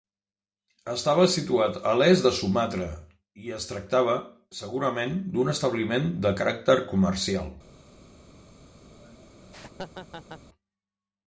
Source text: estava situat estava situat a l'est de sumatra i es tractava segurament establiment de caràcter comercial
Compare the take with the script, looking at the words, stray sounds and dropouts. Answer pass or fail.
fail